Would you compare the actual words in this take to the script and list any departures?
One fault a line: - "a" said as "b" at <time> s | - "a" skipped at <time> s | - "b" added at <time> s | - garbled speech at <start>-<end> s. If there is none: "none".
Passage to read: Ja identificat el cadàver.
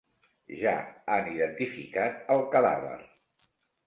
- "han" added at 1.1 s